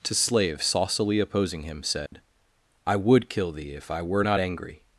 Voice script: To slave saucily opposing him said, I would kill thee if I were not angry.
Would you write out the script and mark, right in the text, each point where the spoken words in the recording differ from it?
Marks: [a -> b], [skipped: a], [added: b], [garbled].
To slave saucily opposing him said, I would kill thee if I were not angry.